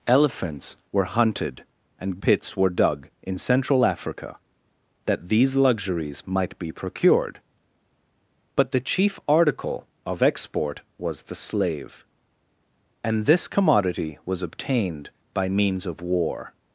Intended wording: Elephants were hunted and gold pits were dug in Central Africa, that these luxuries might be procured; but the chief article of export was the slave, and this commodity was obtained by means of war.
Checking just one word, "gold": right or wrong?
wrong